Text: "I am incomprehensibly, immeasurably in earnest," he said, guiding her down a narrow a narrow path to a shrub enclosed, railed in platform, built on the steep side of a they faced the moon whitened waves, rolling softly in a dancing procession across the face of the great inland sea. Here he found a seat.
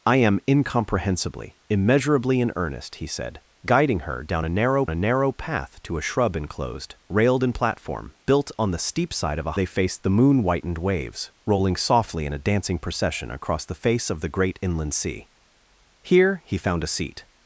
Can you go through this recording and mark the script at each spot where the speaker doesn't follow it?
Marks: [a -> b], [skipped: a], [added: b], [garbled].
"I am incomprehensibly, immeasurably in earnest," he said, guiding her down a narrow a narrow path to a shrub enclosed, railed in platform, built on the steep side of a they faced the moon whitened waves, rolling softly in a dancing procession across the face of the great inland sea. Here he found a seat.